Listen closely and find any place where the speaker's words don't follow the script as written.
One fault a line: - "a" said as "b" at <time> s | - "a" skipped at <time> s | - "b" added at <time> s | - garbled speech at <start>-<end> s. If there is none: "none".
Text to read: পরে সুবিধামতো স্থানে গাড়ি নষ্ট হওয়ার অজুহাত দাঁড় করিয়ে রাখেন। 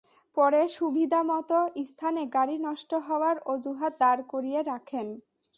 none